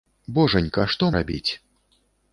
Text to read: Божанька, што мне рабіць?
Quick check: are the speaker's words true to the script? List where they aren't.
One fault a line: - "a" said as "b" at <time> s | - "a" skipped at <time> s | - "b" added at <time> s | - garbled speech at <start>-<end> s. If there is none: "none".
- "мне" skipped at 1.1 s